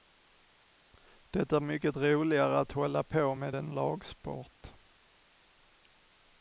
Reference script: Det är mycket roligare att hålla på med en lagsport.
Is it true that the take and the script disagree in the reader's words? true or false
false